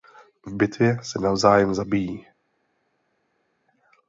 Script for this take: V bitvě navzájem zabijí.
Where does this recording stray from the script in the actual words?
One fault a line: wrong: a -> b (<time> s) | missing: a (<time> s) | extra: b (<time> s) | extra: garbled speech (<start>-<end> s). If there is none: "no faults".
extra: se (1.0 s)